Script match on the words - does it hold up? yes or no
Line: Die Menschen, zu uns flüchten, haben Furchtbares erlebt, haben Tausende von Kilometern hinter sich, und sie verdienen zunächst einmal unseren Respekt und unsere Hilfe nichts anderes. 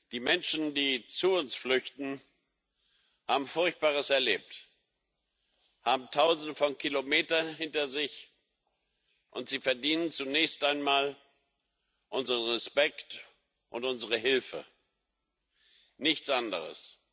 no